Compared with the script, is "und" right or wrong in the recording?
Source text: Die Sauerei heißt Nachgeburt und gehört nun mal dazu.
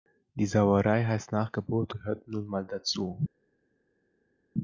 wrong